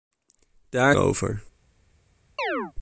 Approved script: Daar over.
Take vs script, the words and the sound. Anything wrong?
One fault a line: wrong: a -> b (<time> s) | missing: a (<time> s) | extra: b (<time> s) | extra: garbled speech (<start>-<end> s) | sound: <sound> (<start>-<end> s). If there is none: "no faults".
sound: chirp (2.4-2.7 s)